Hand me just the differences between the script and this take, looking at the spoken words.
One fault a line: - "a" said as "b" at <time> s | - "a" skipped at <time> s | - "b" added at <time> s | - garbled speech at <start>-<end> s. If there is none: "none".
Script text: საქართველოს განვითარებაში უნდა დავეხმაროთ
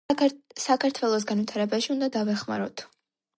none